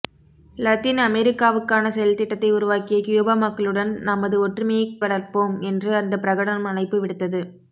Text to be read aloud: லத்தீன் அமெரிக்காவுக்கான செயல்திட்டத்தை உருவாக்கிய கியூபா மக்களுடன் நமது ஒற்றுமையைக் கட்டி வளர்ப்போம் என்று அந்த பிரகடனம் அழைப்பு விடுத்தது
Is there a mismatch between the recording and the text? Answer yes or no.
yes